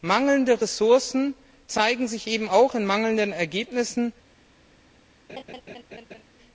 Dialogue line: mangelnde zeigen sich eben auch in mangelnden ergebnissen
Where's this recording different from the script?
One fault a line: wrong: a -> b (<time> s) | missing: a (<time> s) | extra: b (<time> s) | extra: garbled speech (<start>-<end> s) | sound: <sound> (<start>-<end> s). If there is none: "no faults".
extra: ressourcen (0.6 s)
sound: laugh (5.3-6.2 s)